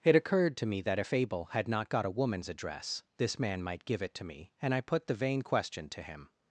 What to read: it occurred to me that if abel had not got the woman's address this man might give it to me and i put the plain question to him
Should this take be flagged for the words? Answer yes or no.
yes